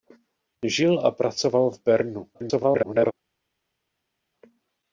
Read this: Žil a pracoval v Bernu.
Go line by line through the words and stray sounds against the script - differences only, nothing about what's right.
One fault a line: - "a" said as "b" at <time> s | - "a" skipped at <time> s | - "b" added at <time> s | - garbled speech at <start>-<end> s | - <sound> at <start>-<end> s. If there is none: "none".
- garbled speech at 2.3-3.1 s